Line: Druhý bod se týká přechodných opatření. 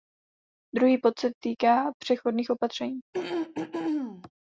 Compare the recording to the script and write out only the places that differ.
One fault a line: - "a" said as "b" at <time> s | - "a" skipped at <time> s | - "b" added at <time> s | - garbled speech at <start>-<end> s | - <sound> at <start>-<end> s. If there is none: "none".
- throat clearing at 3.1-4.3 s